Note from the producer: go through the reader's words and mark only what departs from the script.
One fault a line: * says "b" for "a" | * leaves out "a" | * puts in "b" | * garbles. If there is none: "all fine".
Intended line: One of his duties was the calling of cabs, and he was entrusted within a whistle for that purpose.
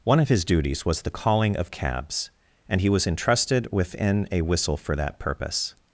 all fine